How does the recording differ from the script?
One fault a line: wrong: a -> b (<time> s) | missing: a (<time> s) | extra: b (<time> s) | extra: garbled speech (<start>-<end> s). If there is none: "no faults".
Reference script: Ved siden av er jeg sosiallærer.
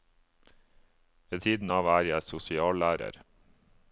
no faults